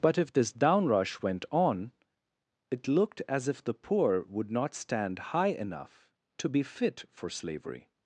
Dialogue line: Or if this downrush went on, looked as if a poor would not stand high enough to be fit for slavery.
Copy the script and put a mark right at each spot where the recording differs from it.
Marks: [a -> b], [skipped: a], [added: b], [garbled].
[Or -> But] if this downrush went on, [added: it] looked as if [a -> the] poor would not stand high enough to be fit for slavery.